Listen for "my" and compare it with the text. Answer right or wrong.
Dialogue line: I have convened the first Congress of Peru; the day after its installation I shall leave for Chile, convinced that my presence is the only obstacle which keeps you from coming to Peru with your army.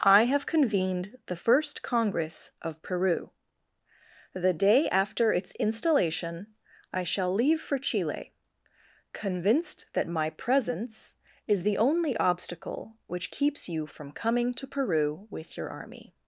right